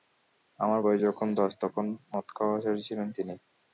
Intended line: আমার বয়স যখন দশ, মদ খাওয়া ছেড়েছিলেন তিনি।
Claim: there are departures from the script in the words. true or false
true